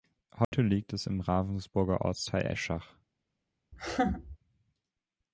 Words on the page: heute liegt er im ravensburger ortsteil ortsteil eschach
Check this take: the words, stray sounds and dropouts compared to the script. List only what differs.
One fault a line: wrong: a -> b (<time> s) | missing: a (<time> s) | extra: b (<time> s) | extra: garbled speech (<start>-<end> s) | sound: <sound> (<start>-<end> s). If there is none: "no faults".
sound: dropout (0.4-0.5 s)
wrong: er -> es (0.9 s)
missing: ortsteil (2.5 s)
sound: laugh (3.7-4.4 s)